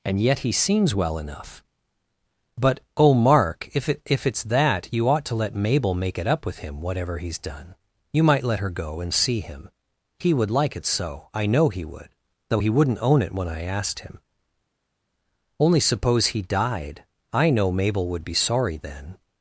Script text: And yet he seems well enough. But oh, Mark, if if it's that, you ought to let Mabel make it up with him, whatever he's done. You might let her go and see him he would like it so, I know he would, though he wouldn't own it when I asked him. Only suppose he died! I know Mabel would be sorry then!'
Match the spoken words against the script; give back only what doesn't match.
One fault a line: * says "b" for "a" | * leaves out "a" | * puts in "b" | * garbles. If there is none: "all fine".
* puts in "it"